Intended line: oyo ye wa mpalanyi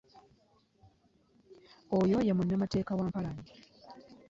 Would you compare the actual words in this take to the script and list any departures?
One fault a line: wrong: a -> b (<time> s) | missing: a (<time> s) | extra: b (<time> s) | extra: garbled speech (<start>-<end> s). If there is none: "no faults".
extra: munnamateeka (2.4 s)